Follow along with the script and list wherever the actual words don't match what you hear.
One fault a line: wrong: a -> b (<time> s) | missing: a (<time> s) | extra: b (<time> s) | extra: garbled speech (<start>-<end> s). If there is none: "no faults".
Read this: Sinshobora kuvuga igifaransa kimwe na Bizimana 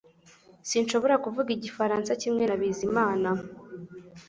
no faults